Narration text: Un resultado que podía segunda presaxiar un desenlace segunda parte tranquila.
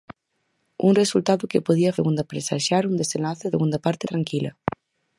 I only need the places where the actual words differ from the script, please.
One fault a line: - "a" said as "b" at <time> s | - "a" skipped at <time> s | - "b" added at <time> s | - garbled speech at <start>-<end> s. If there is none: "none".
none